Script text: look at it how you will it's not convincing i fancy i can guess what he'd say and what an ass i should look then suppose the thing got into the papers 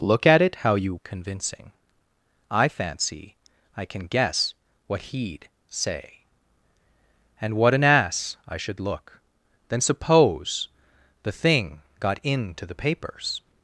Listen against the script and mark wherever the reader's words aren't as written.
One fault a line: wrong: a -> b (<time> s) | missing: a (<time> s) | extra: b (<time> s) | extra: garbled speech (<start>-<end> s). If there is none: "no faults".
missing: will it's not (0.9 s)